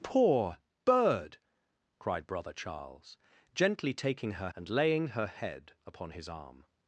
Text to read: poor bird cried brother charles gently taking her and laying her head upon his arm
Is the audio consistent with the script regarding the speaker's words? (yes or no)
yes